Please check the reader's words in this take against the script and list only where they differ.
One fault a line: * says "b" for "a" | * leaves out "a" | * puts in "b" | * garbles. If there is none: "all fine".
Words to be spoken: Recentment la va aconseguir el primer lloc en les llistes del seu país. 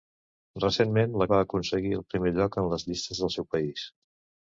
all fine